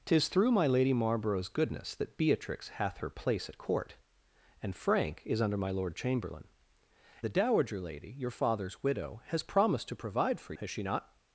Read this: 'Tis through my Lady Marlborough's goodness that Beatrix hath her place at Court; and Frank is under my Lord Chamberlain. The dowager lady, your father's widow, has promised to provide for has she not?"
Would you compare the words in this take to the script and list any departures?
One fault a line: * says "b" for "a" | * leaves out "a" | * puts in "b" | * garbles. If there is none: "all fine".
all fine